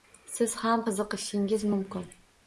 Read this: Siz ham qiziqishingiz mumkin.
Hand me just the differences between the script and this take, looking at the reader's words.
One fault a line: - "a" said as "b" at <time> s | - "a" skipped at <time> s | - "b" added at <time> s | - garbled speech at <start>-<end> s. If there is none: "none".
none